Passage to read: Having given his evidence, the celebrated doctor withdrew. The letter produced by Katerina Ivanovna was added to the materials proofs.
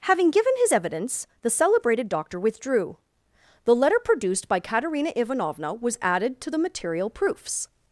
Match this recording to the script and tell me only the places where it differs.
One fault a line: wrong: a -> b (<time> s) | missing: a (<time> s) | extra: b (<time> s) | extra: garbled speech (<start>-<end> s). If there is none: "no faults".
wrong: materials -> material (6.6 s)